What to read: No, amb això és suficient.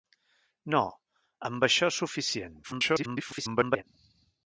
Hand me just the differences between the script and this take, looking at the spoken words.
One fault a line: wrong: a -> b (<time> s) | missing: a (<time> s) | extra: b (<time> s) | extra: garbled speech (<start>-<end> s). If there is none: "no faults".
extra: garbled speech (2.6-3.8 s)